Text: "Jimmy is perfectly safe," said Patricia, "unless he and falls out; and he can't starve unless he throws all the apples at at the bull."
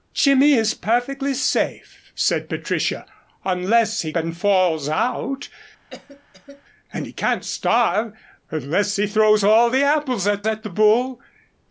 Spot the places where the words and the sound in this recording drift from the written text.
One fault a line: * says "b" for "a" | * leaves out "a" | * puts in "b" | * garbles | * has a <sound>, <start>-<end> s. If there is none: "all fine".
* has a cough, 5.9-6.6 s